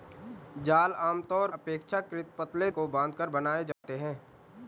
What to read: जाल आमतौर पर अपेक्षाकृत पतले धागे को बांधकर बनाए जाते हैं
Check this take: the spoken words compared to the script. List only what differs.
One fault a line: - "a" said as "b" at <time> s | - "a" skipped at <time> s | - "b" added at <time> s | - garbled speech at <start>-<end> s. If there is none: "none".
- "पर" skipped at 1.5 s
- "धागे" skipped at 2.7 s